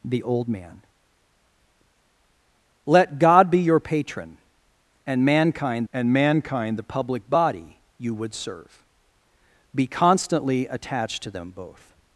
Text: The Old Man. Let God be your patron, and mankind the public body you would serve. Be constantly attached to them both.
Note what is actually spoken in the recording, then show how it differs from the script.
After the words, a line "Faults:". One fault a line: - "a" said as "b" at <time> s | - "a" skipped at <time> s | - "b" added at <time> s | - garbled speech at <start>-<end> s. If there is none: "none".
The Old Man. Let God be your patron, and mankind and mankind the public body you would serve. Be constantly attached to them both.
Faults:
- "and mankind" added at 5.9 s